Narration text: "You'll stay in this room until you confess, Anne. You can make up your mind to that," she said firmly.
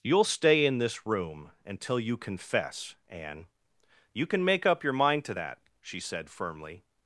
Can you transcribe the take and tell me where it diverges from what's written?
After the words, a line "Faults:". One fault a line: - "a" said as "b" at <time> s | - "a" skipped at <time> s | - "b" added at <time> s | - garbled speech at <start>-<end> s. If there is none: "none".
"You'll stay in this room until you confess, Anne. You can make up your mind to that," she said firmly.
Faults:
none